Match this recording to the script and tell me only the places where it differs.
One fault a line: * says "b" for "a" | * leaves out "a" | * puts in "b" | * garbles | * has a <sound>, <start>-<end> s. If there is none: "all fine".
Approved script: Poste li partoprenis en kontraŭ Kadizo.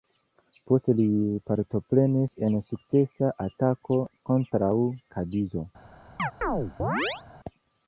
* puts in "sukcesa atako"
* has a chirp, 6.2-7.2 s